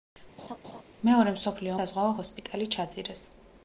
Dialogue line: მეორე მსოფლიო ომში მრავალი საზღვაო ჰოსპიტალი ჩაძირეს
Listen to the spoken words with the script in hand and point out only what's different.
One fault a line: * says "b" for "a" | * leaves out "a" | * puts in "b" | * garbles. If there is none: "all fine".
* leaves out "ომში მრავალი"